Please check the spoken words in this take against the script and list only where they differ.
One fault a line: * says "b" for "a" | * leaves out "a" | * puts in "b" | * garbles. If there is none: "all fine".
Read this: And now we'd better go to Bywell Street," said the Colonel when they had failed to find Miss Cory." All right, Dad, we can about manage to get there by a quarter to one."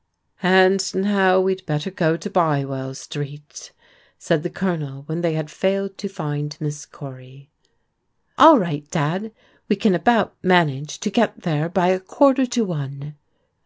all fine